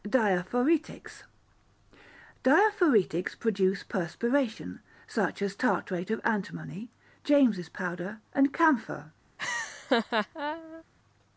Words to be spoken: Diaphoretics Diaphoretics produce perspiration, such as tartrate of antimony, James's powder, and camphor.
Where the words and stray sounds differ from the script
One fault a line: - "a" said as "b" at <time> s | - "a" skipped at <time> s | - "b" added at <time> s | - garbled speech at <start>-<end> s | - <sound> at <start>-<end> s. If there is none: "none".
- laugh at 9.4-10.8 s